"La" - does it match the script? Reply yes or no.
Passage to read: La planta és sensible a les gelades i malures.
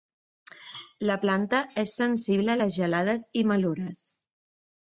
yes